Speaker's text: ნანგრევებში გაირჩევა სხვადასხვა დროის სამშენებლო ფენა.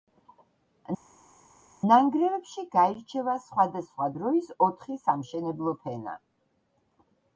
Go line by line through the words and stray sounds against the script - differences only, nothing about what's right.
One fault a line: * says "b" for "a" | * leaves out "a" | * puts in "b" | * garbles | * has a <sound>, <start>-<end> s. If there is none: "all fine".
* puts in "ოთხი"